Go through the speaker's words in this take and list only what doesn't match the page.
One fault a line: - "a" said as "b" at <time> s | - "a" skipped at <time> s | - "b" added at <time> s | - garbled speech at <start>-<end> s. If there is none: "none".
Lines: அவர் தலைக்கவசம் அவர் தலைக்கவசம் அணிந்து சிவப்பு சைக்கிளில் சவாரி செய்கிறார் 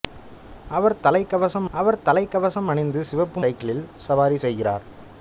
none